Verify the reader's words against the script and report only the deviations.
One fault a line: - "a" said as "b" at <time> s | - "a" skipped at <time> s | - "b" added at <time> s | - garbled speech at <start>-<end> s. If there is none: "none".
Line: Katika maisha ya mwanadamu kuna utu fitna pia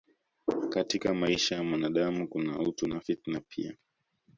- "na" added at 2.9 s